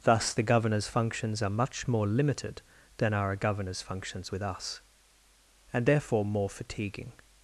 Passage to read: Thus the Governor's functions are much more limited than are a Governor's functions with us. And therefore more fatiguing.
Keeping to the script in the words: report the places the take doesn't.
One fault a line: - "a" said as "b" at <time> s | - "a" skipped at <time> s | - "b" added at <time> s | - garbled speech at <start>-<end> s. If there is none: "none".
none